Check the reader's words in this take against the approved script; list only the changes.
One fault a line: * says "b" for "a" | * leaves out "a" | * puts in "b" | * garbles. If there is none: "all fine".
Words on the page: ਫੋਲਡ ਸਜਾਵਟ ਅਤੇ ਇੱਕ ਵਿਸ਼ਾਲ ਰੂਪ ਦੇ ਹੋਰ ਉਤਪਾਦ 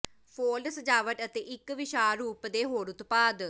all fine